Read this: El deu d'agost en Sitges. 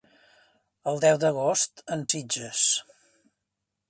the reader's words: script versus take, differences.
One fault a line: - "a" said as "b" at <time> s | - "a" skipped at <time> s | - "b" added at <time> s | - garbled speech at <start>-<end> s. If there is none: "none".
none